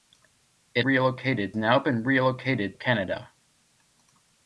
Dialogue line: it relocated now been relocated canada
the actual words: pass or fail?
pass